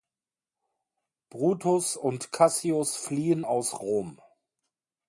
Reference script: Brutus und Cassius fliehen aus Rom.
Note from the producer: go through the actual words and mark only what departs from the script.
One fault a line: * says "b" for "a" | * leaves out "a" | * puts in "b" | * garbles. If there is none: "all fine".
all fine